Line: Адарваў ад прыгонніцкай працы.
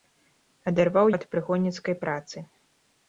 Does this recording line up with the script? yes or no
yes